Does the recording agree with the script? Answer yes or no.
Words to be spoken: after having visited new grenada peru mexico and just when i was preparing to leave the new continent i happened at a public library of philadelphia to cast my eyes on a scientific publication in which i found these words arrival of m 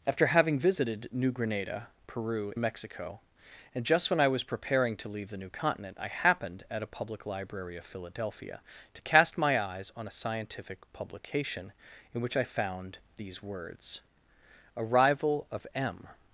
yes